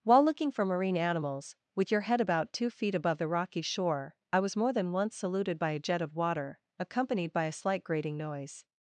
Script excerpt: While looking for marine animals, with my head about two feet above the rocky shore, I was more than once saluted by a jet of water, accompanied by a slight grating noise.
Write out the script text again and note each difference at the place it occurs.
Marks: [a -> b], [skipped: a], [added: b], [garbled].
While looking for marine animals, with [my -> your] head about two feet above the rocky shore, I was more than once saluted by a jet of water, accompanied by a slight grating noise.